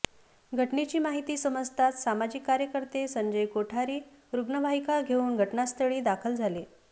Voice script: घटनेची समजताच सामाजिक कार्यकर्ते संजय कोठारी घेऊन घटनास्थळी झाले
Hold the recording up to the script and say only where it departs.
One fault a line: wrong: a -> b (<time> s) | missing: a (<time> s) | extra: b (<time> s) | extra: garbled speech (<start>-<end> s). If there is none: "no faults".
extra: माहिती (1.0 s)
extra: रुग्णवाहिका (4.3 s)
extra: दाखल (6.0 s)